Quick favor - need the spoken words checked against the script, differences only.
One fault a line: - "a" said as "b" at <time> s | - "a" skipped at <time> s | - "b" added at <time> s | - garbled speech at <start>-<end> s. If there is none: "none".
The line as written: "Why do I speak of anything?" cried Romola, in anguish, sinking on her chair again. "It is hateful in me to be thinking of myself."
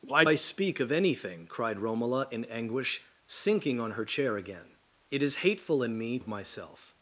- "do" skipped at 0.2 s
- "to be thinking" skipped at 6.2 s